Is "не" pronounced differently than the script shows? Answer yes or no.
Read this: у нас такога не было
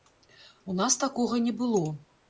no